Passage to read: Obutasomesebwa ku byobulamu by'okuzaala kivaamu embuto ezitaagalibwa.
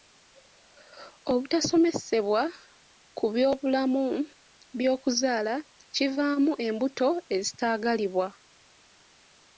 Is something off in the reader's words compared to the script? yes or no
no